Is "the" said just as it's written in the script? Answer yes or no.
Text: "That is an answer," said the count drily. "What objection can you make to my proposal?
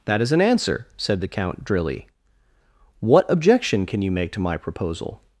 yes